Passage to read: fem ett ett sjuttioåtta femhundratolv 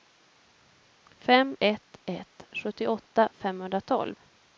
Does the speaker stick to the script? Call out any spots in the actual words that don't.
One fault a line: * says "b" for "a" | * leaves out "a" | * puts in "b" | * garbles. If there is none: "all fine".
all fine